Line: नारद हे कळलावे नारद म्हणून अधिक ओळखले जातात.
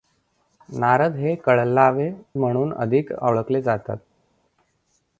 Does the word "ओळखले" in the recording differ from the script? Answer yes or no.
no